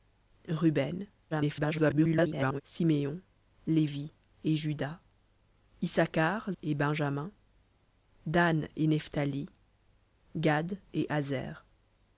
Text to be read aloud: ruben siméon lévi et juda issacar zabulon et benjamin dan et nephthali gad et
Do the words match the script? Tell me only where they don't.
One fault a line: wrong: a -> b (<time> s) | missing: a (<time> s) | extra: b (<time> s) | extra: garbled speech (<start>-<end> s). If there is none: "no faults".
extra: garbled speech (1.3-2.6 s)
missing: zabulon (6.5 s)